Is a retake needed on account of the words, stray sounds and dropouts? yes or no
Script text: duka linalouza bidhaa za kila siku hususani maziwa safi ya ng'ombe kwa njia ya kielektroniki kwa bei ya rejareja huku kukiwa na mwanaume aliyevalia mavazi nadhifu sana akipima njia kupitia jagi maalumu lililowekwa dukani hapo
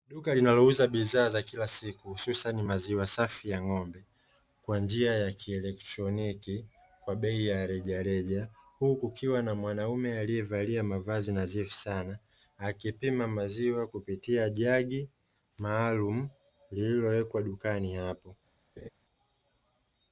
yes